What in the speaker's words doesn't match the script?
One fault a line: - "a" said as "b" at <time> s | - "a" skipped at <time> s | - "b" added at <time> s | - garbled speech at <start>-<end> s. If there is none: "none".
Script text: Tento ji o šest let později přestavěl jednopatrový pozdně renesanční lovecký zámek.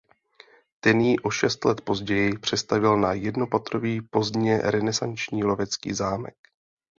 - "Tento" said as "Ten" at 0.8 s
- "na" added at 3.0 s